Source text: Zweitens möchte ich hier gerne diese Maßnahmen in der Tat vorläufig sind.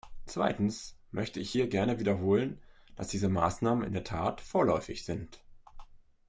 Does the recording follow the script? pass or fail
fail